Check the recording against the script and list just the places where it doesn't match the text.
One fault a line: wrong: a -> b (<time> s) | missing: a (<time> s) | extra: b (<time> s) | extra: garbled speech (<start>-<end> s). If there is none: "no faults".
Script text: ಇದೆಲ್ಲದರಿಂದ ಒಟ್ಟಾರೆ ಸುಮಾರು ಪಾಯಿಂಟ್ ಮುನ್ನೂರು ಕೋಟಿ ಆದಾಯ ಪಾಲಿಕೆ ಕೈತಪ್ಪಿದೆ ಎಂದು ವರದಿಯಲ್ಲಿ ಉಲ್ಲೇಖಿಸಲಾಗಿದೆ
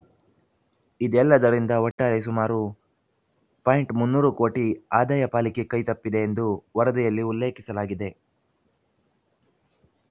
no faults